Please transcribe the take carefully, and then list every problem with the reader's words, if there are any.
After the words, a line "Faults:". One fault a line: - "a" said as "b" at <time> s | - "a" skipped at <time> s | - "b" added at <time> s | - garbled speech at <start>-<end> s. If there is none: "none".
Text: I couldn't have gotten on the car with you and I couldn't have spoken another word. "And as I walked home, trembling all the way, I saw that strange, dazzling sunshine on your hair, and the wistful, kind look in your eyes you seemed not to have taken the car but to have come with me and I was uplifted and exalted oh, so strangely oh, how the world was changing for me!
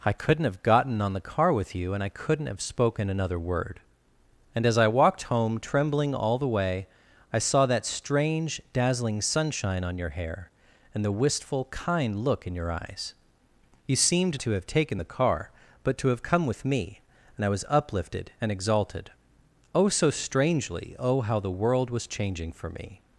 I couldn't have gotten on the car with you and I couldn't have spoken another word. "And as I walked home, trembling all the way, I saw that strange, dazzling sunshine on your hair, and the wistful, kind look in your eyes you seemed to have taken the car but to have come with me and I was uplifted and exalted oh, so strangely oh, how the world was changing for me!
Faults:
- "not" skipped at 14.4 s